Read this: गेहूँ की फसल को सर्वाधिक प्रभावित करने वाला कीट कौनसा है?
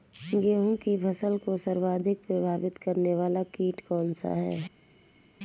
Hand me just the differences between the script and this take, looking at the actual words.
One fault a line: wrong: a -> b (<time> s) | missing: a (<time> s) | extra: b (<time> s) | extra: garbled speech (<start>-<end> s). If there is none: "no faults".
no faults